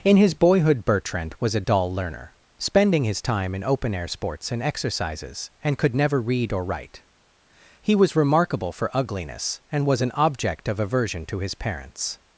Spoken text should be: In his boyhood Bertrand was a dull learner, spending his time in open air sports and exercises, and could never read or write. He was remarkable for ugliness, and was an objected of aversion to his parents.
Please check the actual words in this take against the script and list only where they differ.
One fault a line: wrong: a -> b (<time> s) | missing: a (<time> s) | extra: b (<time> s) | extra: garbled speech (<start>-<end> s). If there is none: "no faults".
wrong: objected -> object (10.1 s)